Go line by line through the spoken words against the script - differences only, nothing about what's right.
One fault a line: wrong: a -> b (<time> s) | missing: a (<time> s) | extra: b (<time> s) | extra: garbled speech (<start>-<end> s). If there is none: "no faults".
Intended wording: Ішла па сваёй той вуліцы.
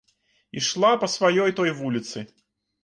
no faults